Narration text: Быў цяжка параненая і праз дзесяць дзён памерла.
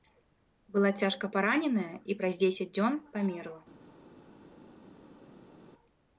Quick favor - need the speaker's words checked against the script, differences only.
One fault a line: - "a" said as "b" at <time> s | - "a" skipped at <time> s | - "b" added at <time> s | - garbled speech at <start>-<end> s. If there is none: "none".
- "Быў" said as "Была" at 0.8 s